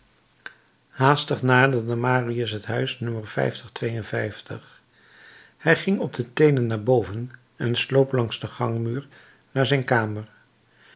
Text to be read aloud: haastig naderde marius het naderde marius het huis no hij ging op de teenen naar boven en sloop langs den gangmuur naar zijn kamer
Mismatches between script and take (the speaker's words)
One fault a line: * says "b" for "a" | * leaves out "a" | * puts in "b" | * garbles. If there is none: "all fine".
* leaves out "naderde marius het"